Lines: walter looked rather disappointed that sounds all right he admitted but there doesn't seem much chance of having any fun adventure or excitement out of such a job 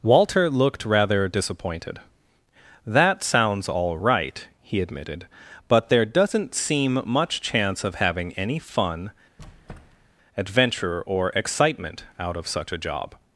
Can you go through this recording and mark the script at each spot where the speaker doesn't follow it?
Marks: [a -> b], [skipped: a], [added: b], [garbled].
walter looked rather disappointed that sounds all right he admitted but there doesn't seem much chance of having any fun adventure or excitement out of such a job